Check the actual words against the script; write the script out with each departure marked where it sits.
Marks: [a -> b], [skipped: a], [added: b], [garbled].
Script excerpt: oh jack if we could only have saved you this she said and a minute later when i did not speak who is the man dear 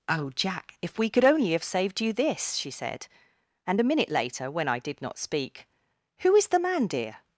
oh jack if we could only have saved you this she said and a minute later when i did not speak who is the man dear